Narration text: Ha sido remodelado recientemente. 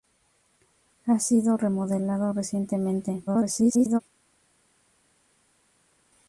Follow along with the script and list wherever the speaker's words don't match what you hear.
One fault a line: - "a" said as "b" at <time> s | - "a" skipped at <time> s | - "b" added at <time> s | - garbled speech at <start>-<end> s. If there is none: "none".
- garbled speech at 3.3-4.0 s